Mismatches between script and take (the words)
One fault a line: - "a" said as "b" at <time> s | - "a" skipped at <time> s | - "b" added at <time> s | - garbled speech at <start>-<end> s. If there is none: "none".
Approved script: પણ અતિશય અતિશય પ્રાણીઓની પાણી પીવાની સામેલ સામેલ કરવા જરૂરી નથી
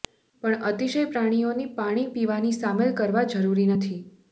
- "અતિશય" skipped at 1.0 s
- "સામેલ" skipped at 3.0 s